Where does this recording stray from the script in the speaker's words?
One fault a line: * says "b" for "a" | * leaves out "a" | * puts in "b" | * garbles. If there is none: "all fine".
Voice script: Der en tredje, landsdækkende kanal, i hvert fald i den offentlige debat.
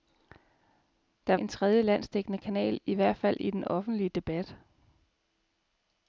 all fine